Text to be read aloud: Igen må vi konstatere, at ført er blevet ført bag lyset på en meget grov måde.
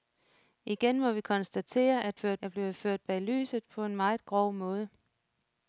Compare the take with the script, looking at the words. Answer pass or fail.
pass